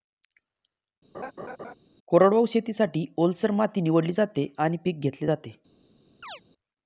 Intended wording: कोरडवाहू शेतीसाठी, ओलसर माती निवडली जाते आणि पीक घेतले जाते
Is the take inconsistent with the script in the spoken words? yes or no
no